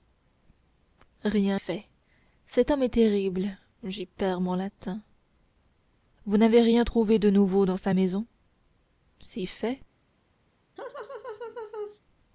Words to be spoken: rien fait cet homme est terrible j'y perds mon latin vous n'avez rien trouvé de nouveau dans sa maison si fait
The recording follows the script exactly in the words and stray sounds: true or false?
false